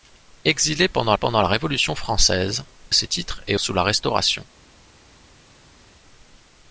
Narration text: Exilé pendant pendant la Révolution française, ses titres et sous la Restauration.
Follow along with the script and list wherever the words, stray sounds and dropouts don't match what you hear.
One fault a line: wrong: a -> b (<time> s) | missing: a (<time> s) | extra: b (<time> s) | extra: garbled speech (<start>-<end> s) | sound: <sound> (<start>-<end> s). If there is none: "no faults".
no faults